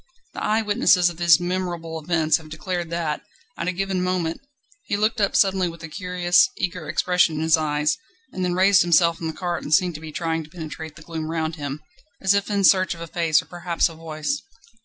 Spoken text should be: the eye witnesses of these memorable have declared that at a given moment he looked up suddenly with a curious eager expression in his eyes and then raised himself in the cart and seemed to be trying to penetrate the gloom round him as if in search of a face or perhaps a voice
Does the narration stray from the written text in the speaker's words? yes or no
yes